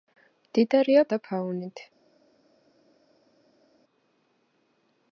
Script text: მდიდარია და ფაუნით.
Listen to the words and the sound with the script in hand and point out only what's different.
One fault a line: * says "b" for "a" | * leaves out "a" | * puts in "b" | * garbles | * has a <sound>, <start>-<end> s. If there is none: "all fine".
all fine